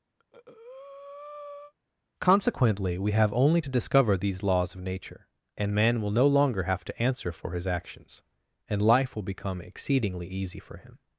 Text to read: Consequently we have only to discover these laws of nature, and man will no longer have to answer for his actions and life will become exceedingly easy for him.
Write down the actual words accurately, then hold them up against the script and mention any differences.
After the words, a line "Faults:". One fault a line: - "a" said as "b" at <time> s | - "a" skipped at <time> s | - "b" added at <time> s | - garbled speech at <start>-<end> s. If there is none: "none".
Consequently we have only to discover these laws of nature, and man will no longer have to answer for his actions and life will become exceedingly easy for him.
Faults:
none